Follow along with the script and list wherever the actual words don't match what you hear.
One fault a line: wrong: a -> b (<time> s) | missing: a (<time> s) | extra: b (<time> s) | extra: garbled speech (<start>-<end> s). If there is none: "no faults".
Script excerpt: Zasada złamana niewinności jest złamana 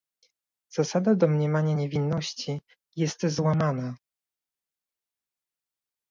wrong: złamana -> domniemania (1.1 s)